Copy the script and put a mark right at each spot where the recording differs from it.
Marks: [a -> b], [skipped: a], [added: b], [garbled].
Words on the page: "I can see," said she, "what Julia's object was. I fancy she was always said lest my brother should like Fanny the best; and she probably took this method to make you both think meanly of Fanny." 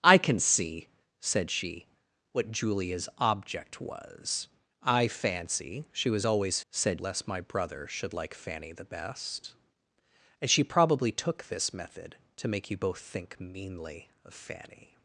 "I can see," said she, "what Julia's object was. I fancy she was always said lest my brother should like Fanny the best; and she probably took this method to make you both think meanly of Fanny."